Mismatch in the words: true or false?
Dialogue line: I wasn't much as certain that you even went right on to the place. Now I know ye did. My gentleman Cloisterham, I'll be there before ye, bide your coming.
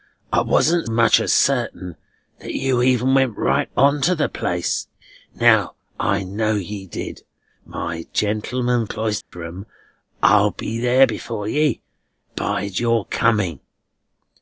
false